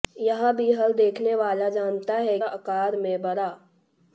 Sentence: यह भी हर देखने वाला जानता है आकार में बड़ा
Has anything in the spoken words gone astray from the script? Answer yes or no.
no